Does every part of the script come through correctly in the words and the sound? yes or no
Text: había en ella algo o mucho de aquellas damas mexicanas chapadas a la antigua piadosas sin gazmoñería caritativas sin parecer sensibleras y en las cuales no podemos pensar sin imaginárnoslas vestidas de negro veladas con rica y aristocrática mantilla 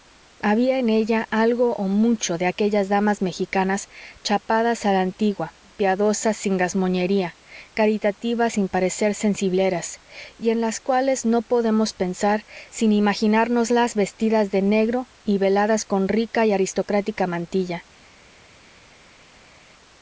no